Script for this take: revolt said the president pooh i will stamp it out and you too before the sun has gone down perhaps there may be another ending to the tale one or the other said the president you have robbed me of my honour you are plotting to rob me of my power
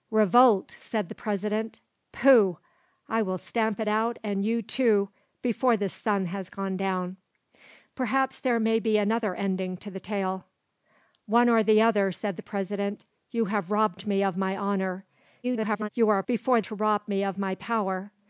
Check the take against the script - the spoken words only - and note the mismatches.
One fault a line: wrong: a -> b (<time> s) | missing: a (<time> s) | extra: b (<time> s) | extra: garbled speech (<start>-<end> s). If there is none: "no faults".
extra: garbled speech (15.4-15.9 s)
wrong: plotting -> before (16.3 s)